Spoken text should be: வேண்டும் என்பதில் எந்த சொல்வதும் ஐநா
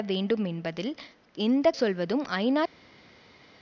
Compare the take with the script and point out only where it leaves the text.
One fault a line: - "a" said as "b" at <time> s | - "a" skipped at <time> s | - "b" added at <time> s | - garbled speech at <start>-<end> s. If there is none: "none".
none